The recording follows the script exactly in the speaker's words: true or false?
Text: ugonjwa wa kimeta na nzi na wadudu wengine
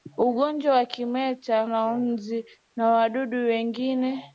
true